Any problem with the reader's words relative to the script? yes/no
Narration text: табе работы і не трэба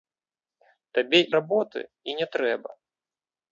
no